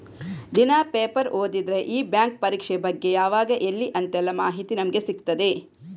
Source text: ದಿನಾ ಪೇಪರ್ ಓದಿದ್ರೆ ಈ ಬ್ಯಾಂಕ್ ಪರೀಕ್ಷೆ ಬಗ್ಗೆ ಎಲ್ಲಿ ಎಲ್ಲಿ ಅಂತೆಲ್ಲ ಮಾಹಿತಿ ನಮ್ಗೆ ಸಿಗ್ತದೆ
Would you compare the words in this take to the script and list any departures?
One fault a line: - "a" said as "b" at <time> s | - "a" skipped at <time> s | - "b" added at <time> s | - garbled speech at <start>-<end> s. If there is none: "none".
- "ಎಲ್ಲಿ" said as "ಯಾವಾಗ" at 3.1 s